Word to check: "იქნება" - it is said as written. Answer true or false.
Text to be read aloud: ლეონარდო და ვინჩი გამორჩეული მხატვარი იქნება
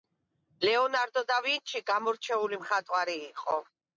false